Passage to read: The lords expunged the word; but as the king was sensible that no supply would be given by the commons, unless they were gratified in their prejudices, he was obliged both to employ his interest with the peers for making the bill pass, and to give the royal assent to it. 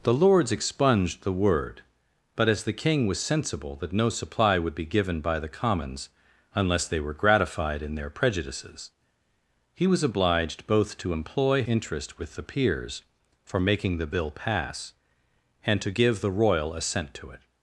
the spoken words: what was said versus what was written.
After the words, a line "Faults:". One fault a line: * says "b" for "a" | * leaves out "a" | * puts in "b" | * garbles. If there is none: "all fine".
The lords expunged the word; but as the king was sensible that no supply would be given by the commons, unless they were gratified in their prejudices, he was obliged both to employ interest with the peers for making the bill pass, and to give the royal assent to it.
Faults:
* leaves out "his"